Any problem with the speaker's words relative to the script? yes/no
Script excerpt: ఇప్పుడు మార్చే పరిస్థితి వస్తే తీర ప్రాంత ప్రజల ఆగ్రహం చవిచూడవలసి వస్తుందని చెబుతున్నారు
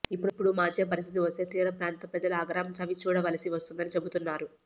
no